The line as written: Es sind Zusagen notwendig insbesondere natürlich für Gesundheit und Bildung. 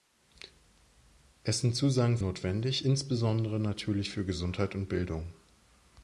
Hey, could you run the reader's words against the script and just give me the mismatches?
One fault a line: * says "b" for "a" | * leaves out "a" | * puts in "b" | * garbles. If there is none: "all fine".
all fine